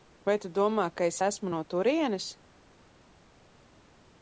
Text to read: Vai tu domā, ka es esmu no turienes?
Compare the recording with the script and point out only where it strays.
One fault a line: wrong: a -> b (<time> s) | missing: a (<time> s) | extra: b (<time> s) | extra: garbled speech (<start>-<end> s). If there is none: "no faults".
no faults